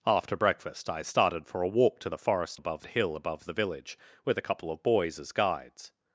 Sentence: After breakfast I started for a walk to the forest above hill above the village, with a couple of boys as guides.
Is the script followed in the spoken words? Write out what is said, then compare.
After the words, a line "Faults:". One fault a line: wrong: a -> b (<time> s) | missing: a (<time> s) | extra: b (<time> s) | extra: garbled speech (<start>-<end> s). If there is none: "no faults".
After breakfast I started for a walk to the forest above hill above the village, with a couple of boys as guides.
Faults:
no faults